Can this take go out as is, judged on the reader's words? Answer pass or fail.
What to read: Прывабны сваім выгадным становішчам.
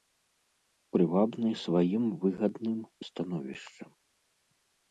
pass